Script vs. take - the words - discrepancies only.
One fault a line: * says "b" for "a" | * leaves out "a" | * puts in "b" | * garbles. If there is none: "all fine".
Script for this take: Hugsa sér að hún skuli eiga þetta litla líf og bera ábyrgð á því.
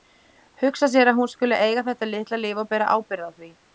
all fine